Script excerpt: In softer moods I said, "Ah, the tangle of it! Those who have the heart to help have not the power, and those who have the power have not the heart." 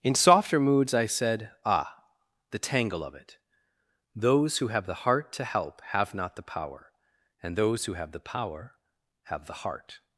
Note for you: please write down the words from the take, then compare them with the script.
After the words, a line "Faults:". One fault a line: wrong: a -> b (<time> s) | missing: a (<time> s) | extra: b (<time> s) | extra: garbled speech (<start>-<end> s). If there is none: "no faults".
In softer moods I said, "Ah, the tangle of it! Those who have the heart to help have not the power, and those who have the power have the heart."
Faults:
missing: not (9.5 s)